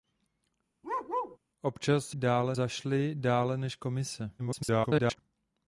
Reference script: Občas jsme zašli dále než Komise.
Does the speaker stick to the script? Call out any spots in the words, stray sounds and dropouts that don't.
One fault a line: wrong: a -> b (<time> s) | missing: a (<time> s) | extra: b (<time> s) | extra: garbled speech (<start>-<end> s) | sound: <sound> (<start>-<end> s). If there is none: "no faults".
sound: bark (0.8-1.4 s)
wrong: jsme -> dále (2.1 s)
extra: garbled speech (4.4-5.2 s)